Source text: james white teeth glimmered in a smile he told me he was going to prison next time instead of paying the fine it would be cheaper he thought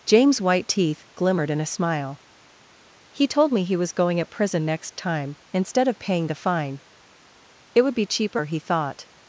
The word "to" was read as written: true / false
false